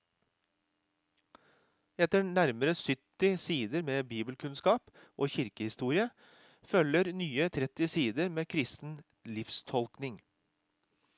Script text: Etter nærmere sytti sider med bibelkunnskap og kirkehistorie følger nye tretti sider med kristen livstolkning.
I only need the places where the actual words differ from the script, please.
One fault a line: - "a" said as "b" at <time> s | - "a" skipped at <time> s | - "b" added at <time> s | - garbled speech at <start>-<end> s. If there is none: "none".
none